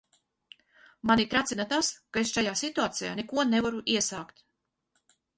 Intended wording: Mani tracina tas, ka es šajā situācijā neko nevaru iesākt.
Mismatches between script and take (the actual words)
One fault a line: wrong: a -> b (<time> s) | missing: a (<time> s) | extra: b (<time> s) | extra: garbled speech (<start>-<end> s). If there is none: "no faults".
no faults